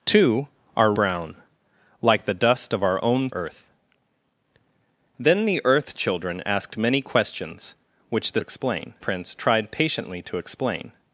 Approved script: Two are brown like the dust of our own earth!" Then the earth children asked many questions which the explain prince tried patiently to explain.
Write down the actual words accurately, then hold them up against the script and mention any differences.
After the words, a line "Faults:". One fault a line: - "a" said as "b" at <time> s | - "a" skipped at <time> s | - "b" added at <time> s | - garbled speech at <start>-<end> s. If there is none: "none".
Two are brown like the dust of our own earth!" Then the earth children asked many questions which the explain prince tried patiently to explain.
Faults:
none